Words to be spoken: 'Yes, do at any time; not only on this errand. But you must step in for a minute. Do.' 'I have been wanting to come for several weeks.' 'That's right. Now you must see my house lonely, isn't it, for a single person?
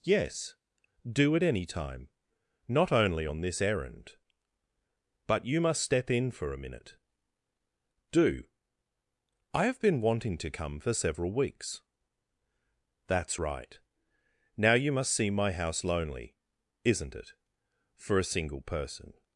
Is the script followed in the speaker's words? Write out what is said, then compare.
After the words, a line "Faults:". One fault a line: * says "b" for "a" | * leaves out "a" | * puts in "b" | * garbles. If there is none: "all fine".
'Yes, do at any time; not only on this errand. But you must step in for a minute. Do.' 'I have been wanting to come for several weeks.' 'That's right. Now you must see my house lonely, isn't it, for a single person?
Faults:
all fine